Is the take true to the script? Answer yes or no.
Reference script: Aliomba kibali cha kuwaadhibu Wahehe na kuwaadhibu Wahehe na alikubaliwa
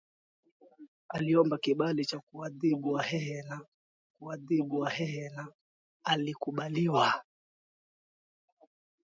yes